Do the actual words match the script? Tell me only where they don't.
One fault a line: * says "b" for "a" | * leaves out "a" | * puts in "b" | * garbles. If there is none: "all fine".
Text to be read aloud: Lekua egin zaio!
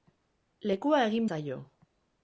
all fine